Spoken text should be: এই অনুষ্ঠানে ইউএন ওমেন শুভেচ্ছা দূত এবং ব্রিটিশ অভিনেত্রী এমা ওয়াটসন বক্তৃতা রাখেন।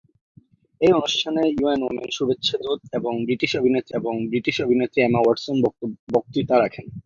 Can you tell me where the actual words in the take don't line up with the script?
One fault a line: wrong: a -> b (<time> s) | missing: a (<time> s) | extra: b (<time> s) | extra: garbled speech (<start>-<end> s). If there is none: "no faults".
extra: এবং ব্রিটিশ অভিনেত্রী (4.0 s)